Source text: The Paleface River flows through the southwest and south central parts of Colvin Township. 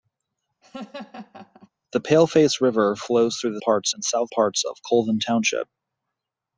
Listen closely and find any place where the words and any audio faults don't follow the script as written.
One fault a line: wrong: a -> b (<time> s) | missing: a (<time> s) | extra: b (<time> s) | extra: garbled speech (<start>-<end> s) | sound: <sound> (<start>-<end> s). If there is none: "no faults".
sound: laugh (0.6-1.7 s)
wrong: southwest -> parts (3.6 s)
missing: central (4.3 s)